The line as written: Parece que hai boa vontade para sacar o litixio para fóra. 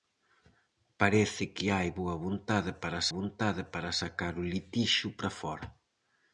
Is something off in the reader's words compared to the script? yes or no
yes